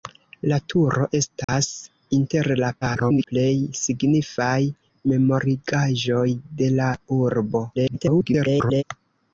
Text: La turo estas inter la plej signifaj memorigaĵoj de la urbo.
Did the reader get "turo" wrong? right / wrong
right